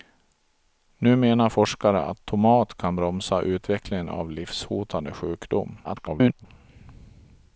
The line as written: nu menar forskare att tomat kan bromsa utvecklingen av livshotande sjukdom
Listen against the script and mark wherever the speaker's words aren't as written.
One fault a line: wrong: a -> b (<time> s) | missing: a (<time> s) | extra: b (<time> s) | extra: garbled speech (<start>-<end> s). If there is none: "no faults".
extra: garbled speech (5.8-6.5 s)